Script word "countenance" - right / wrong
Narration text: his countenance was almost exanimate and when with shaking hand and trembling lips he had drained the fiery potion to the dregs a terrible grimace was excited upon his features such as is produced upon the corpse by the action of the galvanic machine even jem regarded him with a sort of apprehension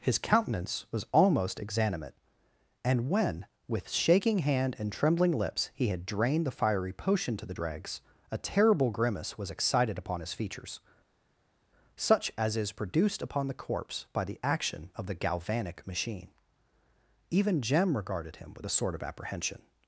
right